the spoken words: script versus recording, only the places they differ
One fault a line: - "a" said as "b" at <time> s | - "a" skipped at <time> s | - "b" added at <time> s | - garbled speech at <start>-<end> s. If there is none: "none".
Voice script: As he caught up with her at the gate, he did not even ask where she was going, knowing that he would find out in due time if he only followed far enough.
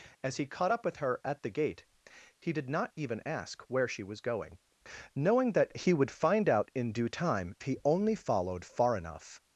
- "if" skipped at 7.5 s